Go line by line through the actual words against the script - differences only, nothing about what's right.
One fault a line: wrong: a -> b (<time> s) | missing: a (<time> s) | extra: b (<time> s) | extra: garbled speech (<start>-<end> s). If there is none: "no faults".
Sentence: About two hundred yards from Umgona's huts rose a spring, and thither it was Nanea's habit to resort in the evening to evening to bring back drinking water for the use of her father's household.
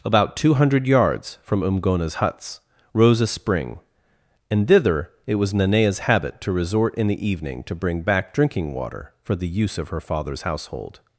missing: evening to (7.7 s)